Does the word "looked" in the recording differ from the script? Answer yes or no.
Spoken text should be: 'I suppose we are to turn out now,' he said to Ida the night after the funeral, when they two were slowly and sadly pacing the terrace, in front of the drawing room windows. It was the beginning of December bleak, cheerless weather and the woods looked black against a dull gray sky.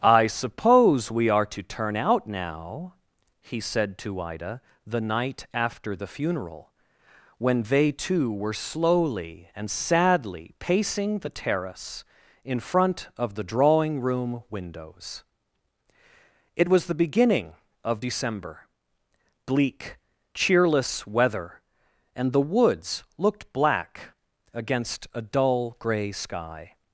no